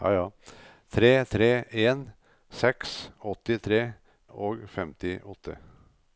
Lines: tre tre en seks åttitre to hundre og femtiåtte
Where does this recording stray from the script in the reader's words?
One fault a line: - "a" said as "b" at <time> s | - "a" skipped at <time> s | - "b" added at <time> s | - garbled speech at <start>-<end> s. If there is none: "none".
- "to hundre" skipped at 3.9 s